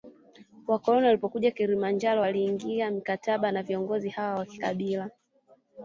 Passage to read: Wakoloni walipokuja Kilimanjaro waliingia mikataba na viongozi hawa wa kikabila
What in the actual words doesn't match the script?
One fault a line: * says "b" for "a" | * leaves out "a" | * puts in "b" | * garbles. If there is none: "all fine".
all fine